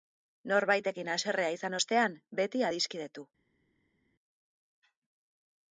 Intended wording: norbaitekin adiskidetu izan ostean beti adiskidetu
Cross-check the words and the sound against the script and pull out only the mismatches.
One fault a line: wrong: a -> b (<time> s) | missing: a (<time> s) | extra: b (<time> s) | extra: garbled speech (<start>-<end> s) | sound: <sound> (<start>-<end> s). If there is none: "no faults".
wrong: adiskidetu -> haserrea (1.1 s)